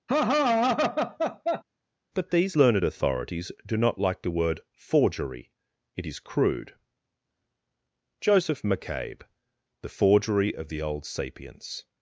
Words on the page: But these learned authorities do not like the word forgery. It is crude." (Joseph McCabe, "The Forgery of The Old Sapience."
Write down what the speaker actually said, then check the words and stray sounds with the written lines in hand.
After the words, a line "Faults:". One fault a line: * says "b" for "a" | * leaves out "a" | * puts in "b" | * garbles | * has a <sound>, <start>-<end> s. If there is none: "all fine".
But these learned authorities do not like the word forgery. It is crude." (Joseph McCabe, "The Forgery of The Old Sapience."
Faults:
* has a laugh, 0.1-1.6 s